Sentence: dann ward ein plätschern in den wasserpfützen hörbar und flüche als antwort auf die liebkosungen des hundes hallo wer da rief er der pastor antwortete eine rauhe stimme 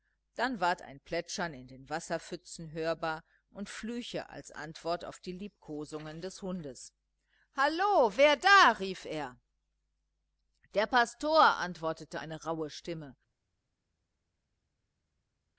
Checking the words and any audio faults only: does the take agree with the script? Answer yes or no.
yes